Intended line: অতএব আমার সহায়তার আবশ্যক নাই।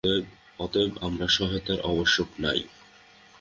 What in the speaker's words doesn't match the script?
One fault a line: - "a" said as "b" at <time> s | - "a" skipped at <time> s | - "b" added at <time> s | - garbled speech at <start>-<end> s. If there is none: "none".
none